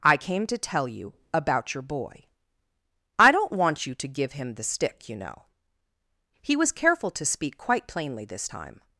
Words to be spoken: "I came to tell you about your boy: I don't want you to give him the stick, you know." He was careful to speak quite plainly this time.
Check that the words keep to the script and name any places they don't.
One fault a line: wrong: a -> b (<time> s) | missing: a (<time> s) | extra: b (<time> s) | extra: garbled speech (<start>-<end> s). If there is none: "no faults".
no faults